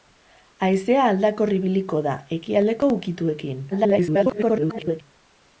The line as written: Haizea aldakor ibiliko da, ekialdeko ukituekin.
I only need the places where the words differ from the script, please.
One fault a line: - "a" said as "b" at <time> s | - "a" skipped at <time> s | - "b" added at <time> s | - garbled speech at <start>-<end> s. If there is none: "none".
- garbled speech at 3.7-5.0 s